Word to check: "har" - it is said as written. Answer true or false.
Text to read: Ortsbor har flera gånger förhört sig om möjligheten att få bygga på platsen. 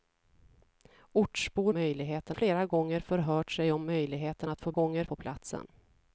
false